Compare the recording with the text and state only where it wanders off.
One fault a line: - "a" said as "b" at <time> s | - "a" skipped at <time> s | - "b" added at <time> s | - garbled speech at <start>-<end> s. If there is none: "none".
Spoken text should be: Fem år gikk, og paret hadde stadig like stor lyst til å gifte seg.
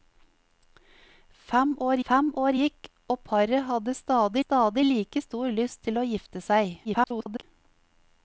- "fem år" added at 2.1 s
- "stadig" added at 4.4 s
- garbled speech at 6.8-7.4 s